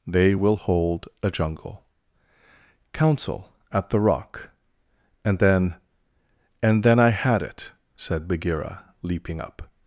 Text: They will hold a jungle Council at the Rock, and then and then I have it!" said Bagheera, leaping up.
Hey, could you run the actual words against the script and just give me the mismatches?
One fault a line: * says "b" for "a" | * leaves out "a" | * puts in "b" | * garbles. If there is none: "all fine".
* says "had" for "have"